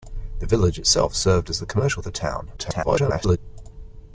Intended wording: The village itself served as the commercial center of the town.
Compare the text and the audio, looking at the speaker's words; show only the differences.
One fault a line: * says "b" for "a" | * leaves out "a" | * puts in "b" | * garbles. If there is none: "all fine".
* leaves out "center of"
* garbles